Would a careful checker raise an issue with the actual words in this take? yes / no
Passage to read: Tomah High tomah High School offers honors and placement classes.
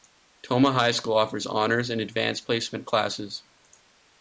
yes